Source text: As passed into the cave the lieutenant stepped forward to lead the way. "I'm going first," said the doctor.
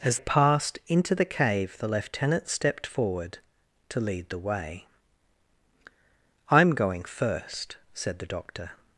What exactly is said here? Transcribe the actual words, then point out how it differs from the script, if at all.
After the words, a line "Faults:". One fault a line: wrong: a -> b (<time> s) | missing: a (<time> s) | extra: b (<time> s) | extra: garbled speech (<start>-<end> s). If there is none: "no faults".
As passed into the cave the lieutenant stepped forward to lead the way. "I'm going first," said the doctor.
Faults:
no faults